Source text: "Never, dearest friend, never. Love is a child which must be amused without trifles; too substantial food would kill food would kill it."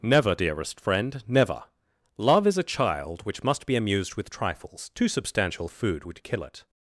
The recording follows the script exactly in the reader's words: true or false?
false